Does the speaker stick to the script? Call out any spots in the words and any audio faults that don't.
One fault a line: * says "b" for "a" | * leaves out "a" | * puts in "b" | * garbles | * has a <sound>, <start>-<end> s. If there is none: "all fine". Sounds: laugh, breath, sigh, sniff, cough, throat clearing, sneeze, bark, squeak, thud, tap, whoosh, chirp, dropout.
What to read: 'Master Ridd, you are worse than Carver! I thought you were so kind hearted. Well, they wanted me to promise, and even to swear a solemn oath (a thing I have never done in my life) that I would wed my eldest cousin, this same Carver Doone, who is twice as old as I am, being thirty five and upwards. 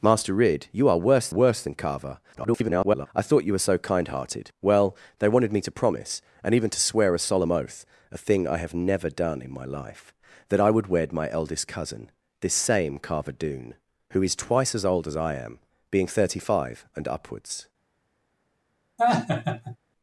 * puts in "worse"
* garbles
* has a laugh, 19.0-19.8 s